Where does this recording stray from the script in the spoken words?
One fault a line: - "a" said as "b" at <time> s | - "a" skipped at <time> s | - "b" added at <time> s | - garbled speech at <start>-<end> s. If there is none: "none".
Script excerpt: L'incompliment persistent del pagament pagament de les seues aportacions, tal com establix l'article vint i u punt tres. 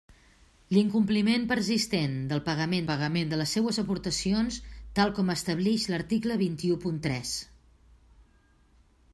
none